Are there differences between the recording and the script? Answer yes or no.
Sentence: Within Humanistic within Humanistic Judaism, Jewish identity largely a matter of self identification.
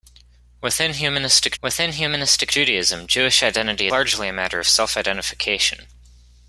no